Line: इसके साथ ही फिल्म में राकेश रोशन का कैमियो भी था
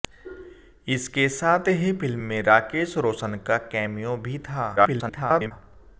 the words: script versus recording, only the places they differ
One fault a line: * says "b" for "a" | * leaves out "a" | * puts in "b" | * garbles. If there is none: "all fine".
* garbles